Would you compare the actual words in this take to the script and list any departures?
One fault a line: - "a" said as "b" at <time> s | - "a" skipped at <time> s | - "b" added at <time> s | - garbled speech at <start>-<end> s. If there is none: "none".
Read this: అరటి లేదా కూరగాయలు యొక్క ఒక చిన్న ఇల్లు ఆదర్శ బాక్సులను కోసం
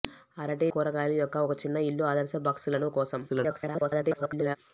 - "లేదా" skipped at 0.7 s
- garbled speech at 3.3-4.6 s